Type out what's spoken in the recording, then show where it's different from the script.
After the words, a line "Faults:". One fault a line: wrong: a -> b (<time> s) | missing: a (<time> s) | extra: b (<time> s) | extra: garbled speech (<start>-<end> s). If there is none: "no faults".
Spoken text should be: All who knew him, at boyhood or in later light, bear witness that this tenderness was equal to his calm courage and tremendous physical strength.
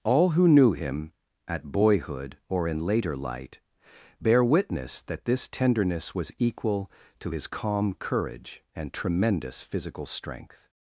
All who knew him, at boyhood or in later light, bear witness that this tenderness was equal to his calm courage and tremendous physical strength.
Faults:
no faults